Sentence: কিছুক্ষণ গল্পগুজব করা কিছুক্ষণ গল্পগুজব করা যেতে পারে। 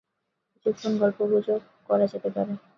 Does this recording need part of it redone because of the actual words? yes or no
yes